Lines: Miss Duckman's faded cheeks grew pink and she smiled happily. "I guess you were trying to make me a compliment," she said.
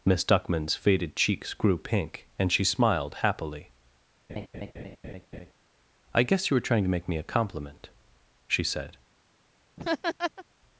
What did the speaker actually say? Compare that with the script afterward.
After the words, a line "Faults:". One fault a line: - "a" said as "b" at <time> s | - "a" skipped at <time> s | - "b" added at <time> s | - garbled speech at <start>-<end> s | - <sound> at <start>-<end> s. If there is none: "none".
Miss Duckman's faded cheeks grew pink and she smiled happily. "I guess you were trying to make me a compliment," she said.
Faults:
- laugh at 4.3-5.5 s
- laugh at 9.8-10.4 s